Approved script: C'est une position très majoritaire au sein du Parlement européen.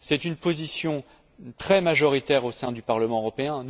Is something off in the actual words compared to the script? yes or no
no